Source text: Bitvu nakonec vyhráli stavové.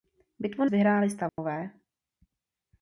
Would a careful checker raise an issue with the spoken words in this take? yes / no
yes